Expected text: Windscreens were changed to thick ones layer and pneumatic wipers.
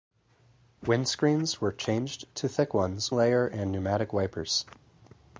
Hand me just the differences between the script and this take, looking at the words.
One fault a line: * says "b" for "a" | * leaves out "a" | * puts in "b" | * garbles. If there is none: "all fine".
all fine